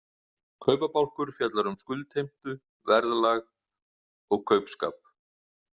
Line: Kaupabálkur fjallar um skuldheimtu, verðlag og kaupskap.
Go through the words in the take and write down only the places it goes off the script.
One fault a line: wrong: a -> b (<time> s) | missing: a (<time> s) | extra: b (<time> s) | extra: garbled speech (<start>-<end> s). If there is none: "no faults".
no faults